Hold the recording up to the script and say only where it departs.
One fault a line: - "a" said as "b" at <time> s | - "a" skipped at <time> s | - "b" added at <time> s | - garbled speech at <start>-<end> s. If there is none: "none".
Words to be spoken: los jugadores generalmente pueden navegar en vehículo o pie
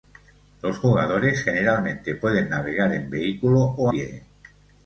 none